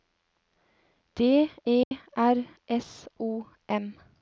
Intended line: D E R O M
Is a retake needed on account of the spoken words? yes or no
yes